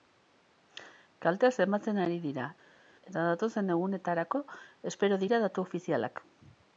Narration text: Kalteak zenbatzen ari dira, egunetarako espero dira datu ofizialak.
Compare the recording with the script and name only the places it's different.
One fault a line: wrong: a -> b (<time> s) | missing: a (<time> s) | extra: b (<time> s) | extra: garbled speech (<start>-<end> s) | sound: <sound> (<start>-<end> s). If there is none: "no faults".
extra: eta datozen (3.1 s)